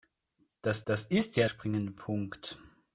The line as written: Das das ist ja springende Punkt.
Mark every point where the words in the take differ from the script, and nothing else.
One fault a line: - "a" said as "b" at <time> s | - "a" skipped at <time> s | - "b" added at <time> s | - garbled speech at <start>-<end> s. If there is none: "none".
none